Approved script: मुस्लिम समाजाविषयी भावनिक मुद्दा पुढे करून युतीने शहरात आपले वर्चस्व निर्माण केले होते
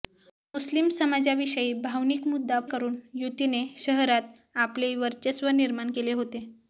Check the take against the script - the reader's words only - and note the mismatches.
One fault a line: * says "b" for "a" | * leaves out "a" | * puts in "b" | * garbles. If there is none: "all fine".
* leaves out "पुढे"